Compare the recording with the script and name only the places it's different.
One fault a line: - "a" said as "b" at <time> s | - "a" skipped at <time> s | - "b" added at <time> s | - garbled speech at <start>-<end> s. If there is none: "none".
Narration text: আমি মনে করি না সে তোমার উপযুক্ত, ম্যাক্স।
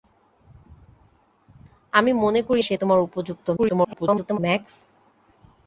- "না" skipped at 2.6 s
- garbled speech at 3.6-4.4 s